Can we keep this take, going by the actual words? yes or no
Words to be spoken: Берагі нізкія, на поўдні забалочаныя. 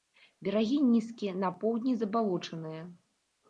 yes